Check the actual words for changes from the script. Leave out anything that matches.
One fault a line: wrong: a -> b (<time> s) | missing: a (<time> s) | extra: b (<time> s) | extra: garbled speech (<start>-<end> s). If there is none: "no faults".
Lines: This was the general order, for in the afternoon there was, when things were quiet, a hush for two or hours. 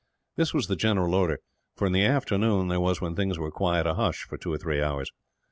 extra: three (4.6 s)